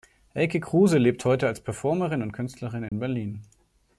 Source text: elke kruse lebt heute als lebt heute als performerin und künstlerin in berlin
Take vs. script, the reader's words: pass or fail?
fail